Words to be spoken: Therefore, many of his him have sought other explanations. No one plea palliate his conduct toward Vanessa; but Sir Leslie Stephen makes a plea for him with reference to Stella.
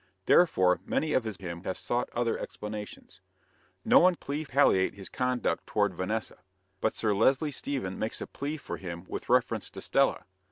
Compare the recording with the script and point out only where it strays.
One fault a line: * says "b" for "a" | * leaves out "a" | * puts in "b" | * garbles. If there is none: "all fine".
all fine